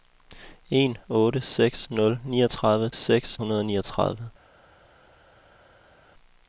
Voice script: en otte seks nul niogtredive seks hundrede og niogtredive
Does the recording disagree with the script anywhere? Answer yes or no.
no